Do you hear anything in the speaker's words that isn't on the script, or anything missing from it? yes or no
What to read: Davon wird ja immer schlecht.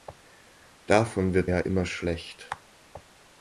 no